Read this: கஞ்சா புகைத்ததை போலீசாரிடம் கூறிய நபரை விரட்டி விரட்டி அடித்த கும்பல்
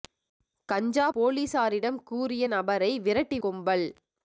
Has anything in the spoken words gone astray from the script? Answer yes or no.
yes